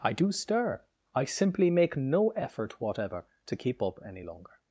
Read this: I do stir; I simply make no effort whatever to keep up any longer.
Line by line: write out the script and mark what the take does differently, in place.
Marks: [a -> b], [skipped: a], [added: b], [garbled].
I do stir; I simply make no effort whatever to keep up any longer.